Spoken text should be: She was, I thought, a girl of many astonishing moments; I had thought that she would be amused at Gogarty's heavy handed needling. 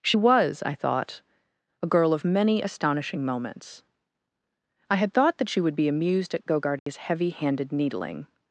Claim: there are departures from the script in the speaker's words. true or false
false